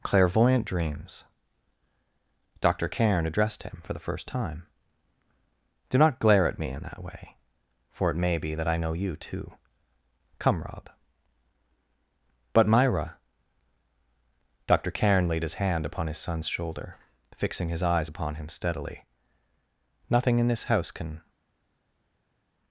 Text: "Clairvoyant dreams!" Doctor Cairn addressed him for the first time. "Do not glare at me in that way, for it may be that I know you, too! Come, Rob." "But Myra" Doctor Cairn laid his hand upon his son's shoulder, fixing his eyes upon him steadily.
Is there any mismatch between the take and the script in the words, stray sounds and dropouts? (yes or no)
yes